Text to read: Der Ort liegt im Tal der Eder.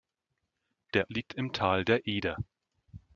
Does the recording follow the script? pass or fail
fail